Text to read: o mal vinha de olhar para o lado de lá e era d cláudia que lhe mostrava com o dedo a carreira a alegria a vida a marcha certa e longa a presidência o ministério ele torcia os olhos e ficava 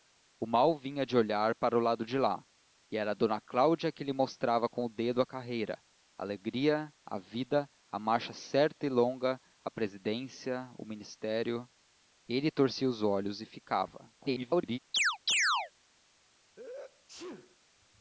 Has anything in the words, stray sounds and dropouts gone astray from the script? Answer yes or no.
yes